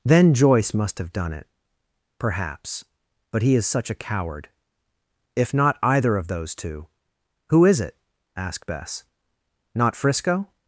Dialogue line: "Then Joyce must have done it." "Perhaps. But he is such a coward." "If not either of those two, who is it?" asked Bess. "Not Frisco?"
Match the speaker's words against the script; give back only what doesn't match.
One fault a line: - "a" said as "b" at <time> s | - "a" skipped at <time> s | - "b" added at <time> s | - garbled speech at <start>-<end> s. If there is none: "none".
none